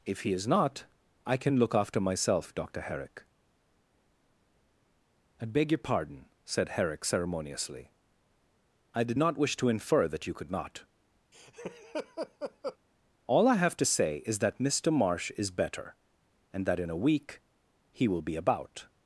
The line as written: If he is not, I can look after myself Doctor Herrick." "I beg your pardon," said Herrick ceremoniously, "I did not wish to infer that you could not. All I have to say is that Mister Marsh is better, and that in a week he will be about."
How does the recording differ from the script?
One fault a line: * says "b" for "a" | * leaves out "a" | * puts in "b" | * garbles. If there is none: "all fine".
all fine